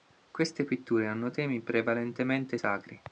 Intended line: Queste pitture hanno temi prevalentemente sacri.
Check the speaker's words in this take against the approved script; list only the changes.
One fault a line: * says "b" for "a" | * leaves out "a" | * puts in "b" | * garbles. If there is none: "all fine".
all fine